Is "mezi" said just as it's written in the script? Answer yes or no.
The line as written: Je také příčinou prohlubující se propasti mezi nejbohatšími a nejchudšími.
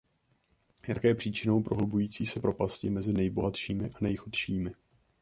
yes